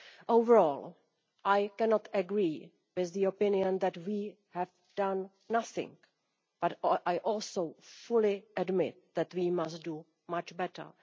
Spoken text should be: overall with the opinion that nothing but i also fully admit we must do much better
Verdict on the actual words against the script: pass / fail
fail